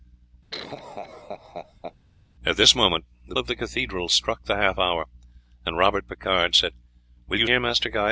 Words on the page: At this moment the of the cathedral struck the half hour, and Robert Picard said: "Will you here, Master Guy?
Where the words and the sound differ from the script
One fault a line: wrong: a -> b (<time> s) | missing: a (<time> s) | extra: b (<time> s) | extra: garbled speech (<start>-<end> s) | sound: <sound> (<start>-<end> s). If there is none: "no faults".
sound: laugh (0.5-2.0 s)